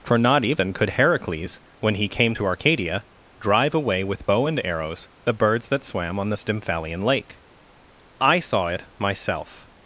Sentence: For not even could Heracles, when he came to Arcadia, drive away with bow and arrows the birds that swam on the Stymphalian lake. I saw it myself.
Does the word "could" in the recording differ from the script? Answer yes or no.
no